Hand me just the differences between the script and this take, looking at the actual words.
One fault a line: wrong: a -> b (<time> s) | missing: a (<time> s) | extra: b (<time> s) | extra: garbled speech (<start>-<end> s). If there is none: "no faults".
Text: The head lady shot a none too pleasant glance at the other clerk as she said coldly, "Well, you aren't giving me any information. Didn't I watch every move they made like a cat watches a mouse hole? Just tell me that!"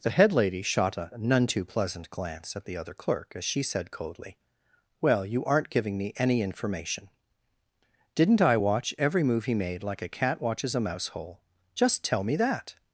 wrong: they -> he (9.4 s)